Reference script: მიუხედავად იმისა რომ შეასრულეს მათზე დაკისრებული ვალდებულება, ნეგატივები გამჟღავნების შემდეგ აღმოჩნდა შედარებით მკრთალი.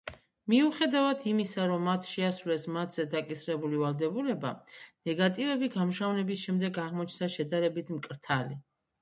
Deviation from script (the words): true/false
true